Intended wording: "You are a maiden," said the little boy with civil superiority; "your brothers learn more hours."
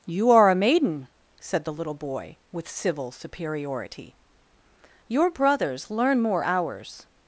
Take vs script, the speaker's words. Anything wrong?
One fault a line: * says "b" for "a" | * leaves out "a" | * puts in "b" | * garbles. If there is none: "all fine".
all fine